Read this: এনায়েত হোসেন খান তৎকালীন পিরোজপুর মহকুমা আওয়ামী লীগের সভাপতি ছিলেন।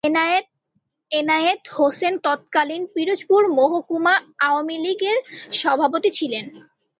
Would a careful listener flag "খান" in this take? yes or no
yes